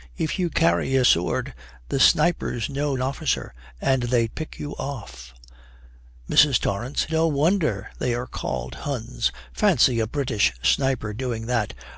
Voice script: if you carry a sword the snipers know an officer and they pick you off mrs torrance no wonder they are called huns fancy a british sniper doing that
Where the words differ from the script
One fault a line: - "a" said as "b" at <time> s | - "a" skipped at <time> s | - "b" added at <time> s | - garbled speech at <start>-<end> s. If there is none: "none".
none